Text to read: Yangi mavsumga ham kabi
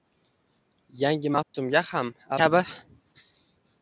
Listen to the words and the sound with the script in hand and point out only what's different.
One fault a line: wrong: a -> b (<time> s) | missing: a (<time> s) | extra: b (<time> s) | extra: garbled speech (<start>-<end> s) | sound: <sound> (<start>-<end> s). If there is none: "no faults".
sound: dropout (1.4-1.5 s)